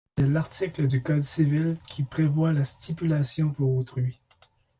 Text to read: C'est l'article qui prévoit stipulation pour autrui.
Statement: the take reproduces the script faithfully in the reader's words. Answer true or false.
false